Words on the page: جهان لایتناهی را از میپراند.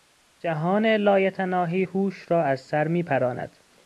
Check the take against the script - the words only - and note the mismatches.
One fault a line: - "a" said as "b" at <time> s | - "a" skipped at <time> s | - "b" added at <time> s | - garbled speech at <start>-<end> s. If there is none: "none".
- "هوش" added at 1.8 s
- "سر" added at 2.6 s